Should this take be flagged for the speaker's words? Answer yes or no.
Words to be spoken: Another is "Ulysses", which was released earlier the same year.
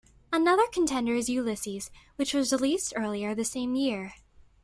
yes